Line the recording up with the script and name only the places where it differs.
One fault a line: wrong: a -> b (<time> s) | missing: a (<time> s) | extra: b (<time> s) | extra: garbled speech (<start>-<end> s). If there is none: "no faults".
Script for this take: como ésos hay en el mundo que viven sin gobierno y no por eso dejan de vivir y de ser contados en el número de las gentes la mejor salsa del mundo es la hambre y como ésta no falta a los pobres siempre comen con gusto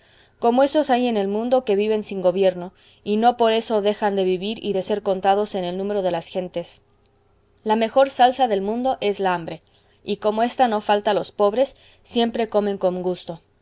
no faults